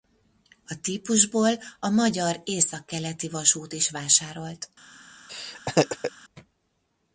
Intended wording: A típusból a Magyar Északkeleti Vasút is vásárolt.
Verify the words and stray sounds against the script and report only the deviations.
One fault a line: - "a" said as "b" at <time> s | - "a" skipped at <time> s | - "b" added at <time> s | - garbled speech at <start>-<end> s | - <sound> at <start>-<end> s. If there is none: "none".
- laugh at 5.3-6.1 s